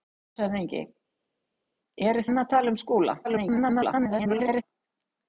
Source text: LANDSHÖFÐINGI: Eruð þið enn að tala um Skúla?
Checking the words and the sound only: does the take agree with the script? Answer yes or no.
no